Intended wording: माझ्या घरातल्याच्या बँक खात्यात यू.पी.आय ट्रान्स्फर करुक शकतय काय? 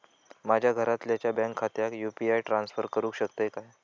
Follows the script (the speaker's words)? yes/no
yes